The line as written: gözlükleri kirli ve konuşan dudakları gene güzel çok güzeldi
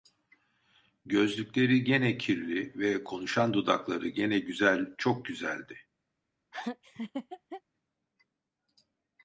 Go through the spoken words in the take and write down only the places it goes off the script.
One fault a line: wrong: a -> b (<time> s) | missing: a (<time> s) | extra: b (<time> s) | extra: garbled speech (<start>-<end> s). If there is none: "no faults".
extra: gene (1.8 s)